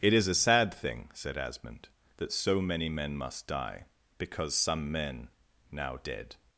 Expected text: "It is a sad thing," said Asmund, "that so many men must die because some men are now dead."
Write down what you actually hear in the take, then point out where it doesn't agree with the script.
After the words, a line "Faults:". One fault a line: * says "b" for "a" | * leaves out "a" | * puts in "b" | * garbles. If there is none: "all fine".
"It is a sad thing," said Asmund, "that so many men must die because some men now dead."
Faults:
* leaves out "are"